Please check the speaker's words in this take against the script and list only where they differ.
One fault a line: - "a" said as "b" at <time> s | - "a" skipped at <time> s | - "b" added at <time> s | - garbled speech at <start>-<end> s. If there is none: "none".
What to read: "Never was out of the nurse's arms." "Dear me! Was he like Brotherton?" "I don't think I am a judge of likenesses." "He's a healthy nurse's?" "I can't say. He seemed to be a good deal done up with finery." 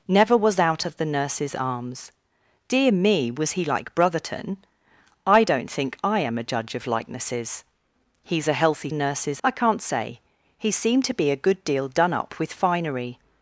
none